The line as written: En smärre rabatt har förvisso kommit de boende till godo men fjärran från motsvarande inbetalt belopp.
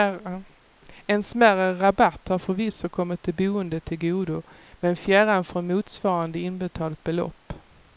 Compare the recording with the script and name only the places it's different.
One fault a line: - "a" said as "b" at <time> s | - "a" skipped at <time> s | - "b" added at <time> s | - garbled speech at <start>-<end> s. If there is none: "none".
none